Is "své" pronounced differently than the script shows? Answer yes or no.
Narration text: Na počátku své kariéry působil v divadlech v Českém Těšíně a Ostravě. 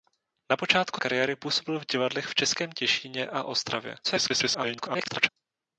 yes